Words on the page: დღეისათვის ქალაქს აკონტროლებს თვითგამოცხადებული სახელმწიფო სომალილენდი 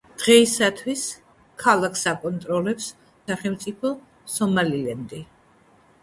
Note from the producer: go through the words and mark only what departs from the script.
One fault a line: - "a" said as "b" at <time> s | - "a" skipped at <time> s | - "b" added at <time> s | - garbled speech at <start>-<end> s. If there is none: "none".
- "თვითგამოცხადებული" skipped at 2.9 s